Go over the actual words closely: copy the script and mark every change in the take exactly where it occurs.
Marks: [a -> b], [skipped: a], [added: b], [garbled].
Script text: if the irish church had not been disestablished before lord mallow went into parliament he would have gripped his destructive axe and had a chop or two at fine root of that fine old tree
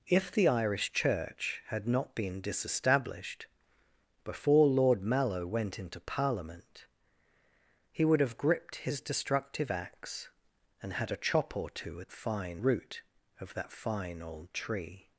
if the irish church had not been disestablished before lord mallow went into parliament he would have gripped his destructive axe and had a chop or two at fine root of that fine old tree